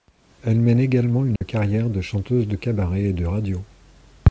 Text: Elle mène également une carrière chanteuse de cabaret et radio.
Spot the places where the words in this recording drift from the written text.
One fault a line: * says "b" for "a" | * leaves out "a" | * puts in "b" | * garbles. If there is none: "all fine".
* puts in "de"
* puts in "de"